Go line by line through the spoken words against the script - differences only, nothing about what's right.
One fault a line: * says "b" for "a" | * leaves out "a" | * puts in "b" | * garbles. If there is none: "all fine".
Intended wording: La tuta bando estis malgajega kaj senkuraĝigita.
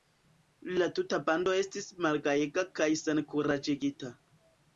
all fine